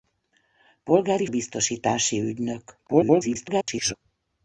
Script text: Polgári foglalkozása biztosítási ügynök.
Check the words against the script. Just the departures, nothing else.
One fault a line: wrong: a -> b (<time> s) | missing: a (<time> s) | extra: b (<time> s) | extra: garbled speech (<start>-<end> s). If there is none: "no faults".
missing: foglalkozása (1.2 s)
extra: garbled speech (2.9-3.9 s)